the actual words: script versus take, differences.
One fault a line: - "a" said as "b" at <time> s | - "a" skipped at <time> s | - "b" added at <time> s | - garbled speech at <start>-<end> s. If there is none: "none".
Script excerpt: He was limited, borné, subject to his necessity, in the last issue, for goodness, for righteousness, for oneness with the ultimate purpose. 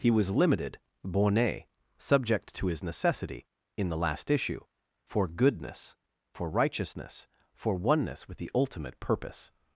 none